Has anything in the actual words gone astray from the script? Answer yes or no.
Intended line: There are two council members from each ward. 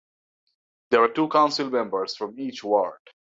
no